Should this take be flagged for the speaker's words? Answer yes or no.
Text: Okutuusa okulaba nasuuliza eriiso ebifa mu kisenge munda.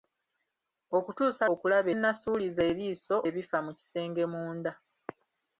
no